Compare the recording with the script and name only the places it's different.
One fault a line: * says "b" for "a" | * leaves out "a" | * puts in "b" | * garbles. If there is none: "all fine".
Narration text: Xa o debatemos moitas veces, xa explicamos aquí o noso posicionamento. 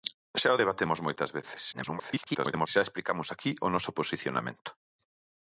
* garbles